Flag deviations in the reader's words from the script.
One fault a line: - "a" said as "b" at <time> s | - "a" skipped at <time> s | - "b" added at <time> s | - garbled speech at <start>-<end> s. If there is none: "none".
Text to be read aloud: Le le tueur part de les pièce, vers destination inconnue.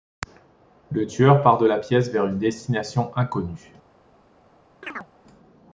- "le" skipped at 1.1 s
- "les" said as "la" at 1.7 s
- "une" added at 2.3 s